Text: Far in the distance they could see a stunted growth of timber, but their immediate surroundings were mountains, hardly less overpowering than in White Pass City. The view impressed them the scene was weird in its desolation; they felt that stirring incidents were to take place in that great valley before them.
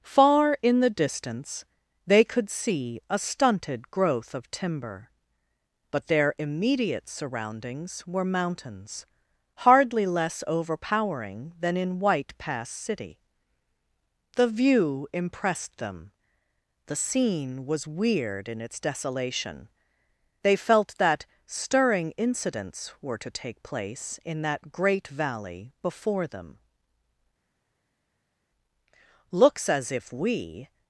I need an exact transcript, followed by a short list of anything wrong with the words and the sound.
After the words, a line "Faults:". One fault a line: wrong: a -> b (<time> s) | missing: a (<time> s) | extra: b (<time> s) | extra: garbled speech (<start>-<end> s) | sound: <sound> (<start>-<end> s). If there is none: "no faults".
Far in the distance they could see a stunted growth of timber, but their immediate surroundings were mountains, hardly less overpowering than in White Pass City. The view impressed them the scene was weird in its desolation; they felt that stirring incidents were to take place in that great valley before them. "Looks as if we
Faults:
extra: Looks as if we (29.3 s)